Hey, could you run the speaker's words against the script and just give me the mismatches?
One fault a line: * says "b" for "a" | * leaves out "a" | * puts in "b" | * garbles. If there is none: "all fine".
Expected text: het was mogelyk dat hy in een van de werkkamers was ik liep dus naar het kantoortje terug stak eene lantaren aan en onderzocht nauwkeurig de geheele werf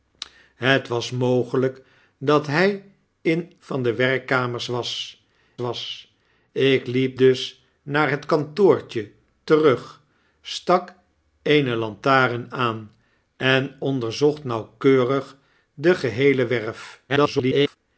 * leaves out "een"
* puts in "was"
* garbles